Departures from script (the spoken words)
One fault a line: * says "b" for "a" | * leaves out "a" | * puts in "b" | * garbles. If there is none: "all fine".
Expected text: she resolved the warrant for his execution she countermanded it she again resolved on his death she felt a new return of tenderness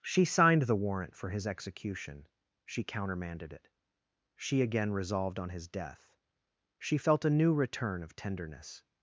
* says "signed" for "resolved"